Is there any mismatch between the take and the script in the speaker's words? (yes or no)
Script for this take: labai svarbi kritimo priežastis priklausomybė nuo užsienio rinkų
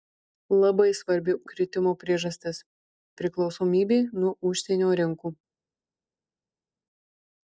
no